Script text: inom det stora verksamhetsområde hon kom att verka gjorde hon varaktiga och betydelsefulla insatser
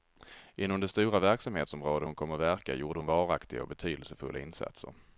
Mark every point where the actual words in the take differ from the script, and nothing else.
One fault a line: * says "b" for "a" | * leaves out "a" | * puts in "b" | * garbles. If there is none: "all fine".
all fine